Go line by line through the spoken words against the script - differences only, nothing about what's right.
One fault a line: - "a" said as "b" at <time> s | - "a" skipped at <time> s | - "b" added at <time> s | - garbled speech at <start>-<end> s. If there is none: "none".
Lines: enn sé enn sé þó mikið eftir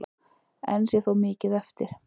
- "enn sé" skipped at 1.0 s